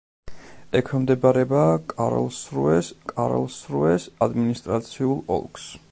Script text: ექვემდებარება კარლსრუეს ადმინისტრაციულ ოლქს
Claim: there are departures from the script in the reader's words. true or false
true